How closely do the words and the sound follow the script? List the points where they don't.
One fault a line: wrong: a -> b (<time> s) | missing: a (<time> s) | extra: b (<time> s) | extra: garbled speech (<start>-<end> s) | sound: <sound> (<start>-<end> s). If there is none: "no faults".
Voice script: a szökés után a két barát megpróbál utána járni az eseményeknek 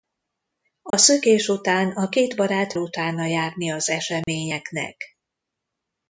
sound: dropout (0.9-0.9 s)
missing: megpróbál (2.8 s)
sound: dropout (4.2-4.3 s)